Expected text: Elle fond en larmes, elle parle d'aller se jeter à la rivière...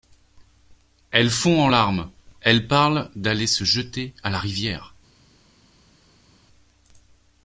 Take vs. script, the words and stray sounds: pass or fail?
pass